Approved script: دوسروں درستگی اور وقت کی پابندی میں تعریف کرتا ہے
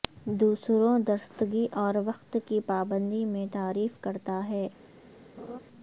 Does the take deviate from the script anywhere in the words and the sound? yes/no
yes